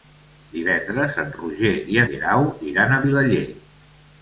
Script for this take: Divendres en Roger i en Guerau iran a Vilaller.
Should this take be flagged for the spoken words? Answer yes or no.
yes